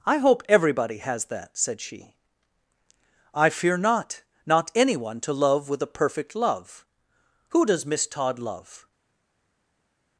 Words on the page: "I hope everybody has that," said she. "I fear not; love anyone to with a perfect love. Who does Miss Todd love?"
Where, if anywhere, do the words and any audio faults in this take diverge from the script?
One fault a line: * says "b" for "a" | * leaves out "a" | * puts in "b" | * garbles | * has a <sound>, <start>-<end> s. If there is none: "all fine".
* says "not" for "love"
* puts in "love"